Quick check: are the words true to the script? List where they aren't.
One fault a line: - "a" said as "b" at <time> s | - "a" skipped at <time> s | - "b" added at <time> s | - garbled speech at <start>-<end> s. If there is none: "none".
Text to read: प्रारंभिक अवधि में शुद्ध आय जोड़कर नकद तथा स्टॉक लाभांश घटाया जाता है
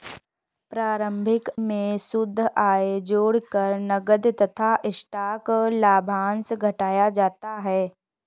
- "अवधि" skipped at 1.5 s